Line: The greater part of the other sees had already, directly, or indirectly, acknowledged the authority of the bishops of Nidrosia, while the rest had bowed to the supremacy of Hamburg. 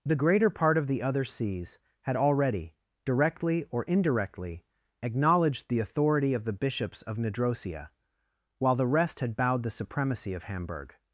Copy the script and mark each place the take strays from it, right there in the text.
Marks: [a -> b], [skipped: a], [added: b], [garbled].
The greater part of the other sees had already, directly, or indirectly, acknowledged the authority of the bishops of Nidrosia, while the rest had bowed [skipped: to] the supremacy of Hamburg.